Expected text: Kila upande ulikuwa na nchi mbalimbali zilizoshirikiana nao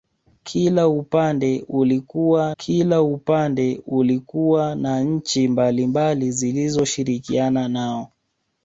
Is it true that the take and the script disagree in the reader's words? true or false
true